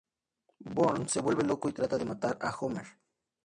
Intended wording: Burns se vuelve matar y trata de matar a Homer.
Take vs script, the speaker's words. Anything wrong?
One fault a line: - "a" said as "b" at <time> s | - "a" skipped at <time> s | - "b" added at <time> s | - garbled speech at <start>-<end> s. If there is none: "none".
- "matar" said as "loco" at 1.4 s